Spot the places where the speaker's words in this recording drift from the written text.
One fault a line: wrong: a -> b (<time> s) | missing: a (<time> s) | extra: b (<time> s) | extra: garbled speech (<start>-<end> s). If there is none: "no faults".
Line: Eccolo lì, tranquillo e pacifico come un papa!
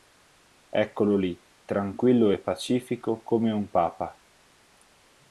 no faults